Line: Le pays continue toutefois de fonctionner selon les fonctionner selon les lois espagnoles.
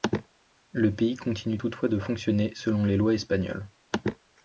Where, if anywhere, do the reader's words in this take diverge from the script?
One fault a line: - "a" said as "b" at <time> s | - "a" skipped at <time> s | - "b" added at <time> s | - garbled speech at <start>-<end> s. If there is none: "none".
- "fonctionner selon les" skipped at 3.0 s